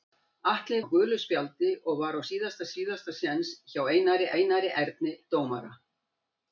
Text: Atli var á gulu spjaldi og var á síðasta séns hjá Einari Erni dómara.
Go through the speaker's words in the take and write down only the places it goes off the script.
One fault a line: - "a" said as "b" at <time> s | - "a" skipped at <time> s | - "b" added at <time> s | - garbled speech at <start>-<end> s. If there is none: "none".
- "var" skipped at 0.8 s
- "síðasta" added at 2.8 s
- "Einari" added at 4.4 s